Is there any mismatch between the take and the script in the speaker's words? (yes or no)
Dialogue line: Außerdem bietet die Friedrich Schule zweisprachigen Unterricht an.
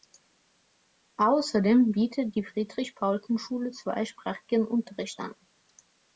yes